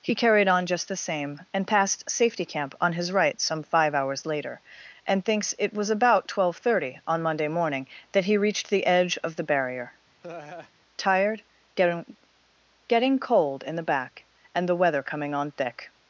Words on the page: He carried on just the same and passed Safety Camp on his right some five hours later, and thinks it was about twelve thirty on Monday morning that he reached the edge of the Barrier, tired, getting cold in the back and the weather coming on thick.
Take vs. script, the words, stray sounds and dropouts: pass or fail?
fail